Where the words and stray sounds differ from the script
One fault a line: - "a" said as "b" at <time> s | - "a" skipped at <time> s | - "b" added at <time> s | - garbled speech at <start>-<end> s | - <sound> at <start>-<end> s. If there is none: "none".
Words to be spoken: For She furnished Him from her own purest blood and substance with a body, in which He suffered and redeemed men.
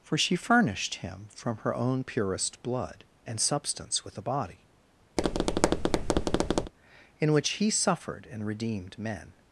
- tap at 5.2-6.7 s